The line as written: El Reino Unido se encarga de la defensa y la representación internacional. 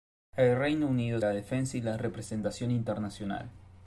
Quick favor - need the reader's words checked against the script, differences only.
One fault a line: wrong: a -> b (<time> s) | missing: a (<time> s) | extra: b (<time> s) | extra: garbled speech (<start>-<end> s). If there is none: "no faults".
missing: se encarga de (1.2 s)